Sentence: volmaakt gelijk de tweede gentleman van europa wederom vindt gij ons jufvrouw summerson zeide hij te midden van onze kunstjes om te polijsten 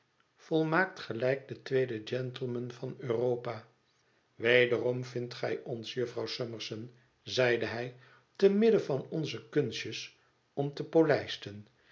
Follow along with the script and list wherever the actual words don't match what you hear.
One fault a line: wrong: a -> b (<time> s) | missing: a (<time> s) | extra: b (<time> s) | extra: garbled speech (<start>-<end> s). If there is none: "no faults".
no faults